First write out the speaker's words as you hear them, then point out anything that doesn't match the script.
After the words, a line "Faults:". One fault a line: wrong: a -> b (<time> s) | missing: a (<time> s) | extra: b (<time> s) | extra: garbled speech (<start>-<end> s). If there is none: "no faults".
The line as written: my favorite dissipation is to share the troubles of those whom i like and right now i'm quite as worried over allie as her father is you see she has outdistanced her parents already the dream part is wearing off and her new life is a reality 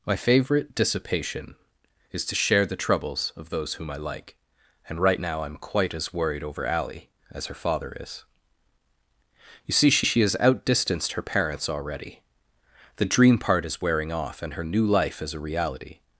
my favorite dissipation is to share the troubles of those whom i like and right now i'm quite as worried over allie as her father is you see she she has outdistanced her parents already the dream part is wearing off and her new life is a reality
Faults:
extra: she (10.0 s)